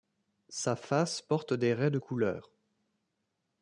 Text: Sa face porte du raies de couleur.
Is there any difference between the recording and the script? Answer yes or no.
yes